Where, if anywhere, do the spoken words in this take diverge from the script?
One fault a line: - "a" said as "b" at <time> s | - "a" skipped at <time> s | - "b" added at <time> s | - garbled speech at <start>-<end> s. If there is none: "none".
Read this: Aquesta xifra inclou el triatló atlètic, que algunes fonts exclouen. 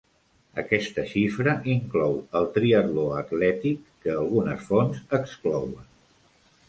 none